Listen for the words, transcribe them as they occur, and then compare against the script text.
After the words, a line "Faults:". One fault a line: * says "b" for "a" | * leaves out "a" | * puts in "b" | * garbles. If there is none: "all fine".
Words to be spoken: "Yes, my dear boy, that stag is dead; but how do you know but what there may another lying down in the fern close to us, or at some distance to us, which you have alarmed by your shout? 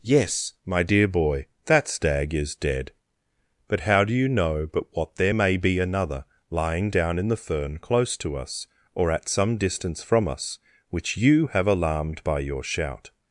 "Yes, my dear boy, that stag is dead; but how do you know but what there may be another lying down in the fern close to us, or at some distance from us, which you have alarmed by your shout?
Faults:
* puts in "be"
* says "from" for "to"